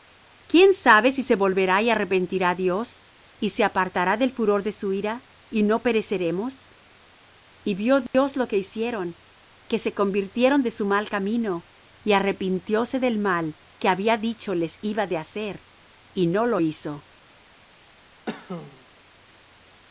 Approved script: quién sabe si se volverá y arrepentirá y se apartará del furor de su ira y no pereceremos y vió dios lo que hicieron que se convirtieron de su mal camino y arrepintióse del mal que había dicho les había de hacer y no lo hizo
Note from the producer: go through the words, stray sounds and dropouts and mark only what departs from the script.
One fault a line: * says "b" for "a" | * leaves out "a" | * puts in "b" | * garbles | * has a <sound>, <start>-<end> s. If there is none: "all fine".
* puts in "dios"
* has a dropout, 8.1-8.1 s
* has a cough, 18.3-18.9 s